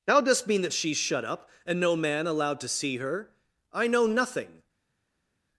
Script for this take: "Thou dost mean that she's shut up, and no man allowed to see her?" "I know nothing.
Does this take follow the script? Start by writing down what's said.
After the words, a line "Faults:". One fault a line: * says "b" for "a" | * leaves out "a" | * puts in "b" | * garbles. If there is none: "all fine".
"Thou dost mean that she's shut up, and no man allowed to see her?" "I know nothing.
Faults:
all fine